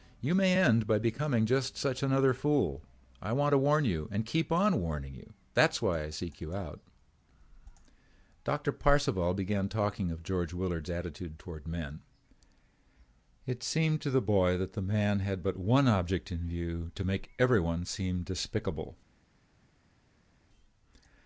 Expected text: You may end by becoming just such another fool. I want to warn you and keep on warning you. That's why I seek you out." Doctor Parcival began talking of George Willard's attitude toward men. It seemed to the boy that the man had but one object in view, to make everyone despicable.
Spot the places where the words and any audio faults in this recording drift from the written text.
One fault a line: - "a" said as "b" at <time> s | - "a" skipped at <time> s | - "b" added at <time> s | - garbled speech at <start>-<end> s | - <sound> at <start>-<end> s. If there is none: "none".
- "seem" added at 17.8 s